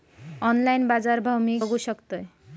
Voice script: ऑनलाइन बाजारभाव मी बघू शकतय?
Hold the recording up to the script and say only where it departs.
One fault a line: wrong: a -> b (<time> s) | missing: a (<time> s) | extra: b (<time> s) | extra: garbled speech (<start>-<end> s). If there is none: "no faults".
no faults